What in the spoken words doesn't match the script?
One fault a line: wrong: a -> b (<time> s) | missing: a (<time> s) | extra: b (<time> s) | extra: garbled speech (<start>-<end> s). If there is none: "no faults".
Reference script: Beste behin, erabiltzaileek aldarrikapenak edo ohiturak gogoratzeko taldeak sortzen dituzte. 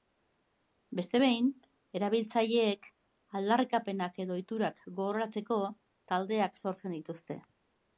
no faults